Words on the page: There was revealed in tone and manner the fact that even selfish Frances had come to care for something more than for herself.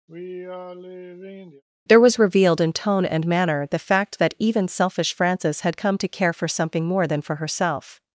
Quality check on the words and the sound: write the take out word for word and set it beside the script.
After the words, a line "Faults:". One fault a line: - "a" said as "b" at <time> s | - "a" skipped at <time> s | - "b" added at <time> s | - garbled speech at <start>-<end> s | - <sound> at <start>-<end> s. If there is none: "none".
There was revealed in tone and manner the fact that even selfish Frances had come to care for something more than for herself.
Faults:
- sigh at 0.1-1.6 s